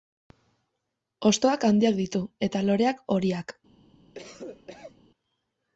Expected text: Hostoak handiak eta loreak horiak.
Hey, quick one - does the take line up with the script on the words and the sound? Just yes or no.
no